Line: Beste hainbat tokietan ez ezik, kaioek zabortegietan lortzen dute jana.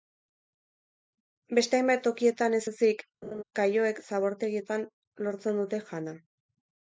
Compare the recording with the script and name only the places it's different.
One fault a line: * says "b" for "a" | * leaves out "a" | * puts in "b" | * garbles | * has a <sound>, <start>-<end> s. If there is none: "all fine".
* has a laugh, 3.2-3.4 s